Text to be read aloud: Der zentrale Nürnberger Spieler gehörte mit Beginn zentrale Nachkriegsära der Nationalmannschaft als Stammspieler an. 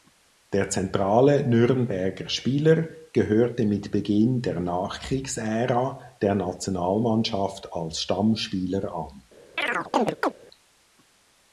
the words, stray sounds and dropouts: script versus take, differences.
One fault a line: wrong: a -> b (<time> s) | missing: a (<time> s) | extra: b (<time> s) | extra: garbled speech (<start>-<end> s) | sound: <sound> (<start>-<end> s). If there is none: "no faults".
wrong: zentrale -> der (4.4 s)
sound: chirp (9.6-10.3 s)